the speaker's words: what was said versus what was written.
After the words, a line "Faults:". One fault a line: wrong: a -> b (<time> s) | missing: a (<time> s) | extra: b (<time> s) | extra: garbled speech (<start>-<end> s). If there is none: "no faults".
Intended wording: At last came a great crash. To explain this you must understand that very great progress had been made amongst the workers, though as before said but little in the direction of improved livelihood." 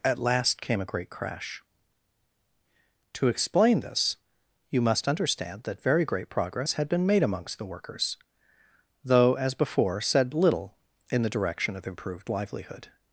At last came a great crash. To explain this you must understand that very great progress had been made amongst the workers, though as before said little in the direction of improved livelihood."
Faults:
missing: but (10.3 s)